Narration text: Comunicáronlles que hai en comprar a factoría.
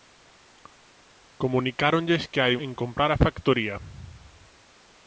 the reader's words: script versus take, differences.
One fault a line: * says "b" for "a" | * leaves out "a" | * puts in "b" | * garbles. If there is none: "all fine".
all fine